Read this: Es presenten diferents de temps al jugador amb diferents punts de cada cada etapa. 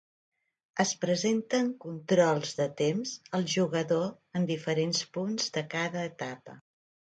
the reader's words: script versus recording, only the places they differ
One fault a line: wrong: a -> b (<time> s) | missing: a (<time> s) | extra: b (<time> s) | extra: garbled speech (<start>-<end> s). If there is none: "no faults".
wrong: diferents -> controls (1.8 s)
wrong: amb -> en (4.4 s)
missing: cada (6.1 s)